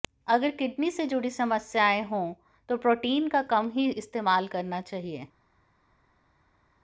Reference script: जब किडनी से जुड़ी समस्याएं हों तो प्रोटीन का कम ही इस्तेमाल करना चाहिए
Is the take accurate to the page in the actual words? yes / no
no